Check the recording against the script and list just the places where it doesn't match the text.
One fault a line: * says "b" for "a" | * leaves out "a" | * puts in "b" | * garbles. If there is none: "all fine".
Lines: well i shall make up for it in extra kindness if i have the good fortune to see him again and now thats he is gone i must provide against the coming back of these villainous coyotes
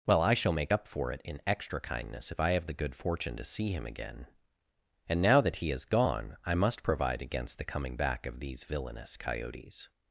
* says "that" for "thats"